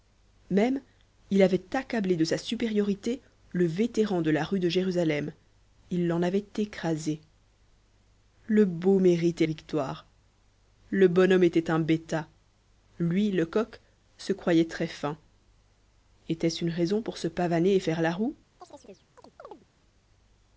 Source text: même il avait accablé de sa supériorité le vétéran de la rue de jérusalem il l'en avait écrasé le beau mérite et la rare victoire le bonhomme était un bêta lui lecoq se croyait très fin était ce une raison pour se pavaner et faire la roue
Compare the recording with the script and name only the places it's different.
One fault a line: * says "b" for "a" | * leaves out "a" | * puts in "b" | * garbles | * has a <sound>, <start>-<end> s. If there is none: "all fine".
* leaves out "la rare"
* has a chirp, 18.6-19.7 s